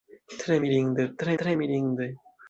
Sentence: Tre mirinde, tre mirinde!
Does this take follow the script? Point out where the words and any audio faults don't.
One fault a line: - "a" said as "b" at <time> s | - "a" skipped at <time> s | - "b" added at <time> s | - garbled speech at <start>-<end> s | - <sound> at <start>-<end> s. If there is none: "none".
- "tre" added at 1.4 s